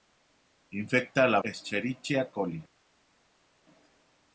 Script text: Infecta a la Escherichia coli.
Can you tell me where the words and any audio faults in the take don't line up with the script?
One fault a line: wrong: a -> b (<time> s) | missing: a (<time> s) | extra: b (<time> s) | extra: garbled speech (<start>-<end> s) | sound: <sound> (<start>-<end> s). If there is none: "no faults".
no faults